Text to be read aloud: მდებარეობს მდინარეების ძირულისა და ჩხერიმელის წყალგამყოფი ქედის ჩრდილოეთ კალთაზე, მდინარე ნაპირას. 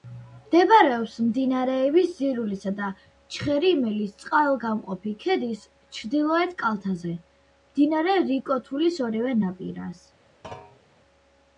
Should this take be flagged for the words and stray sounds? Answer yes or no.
yes